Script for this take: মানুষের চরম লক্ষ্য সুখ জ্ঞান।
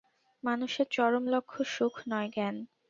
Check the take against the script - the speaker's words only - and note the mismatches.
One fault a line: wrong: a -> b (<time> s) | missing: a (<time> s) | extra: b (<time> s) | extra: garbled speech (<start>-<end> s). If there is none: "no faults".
extra: নয় (2.1 s)